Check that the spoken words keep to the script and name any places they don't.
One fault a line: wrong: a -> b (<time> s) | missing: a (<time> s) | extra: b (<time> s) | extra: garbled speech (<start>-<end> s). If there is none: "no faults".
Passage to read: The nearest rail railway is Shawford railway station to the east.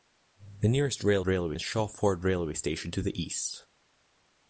no faults